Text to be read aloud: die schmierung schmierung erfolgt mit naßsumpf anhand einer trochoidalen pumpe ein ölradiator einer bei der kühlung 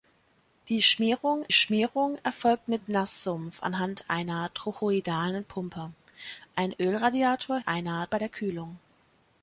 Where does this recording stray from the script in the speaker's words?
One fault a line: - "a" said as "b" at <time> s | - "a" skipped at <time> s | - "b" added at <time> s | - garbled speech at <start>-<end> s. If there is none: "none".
none